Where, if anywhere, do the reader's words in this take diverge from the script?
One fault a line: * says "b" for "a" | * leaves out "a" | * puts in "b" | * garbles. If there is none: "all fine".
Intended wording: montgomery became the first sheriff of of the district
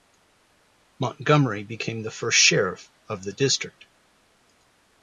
* leaves out "of"